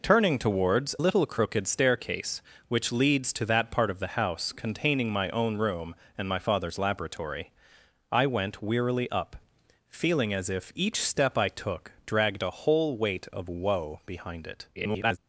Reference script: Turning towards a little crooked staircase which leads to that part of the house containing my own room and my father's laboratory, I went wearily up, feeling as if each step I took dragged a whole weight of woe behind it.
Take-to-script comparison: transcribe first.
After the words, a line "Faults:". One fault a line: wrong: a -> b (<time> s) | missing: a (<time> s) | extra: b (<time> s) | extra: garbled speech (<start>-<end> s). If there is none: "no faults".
Turning towards little crooked staircase which leads to that part of the house containing my own room and my father's laboratory, I went wearily up, feeling as if each step I took dragged a whole weight of woe behind it. [garbled]
Faults:
missing: a (0.9 s)
extra: garbled speech (14.8-15.2 s)